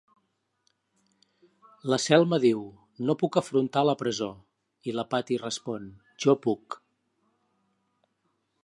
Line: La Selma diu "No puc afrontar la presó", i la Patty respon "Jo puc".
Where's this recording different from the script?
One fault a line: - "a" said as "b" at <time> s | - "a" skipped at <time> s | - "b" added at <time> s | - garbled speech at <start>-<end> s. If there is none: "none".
none